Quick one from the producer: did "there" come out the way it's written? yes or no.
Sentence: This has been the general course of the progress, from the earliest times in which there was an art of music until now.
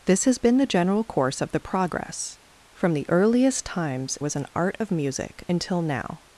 no